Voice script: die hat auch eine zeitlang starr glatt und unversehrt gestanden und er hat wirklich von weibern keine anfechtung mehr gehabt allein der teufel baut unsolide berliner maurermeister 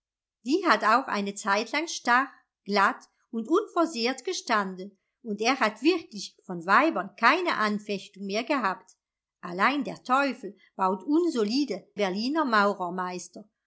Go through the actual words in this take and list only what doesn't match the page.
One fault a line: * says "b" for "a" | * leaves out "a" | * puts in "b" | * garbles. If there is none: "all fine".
all fine